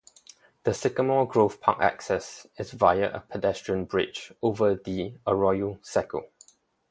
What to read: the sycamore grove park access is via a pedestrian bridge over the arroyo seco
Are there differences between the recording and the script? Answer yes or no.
no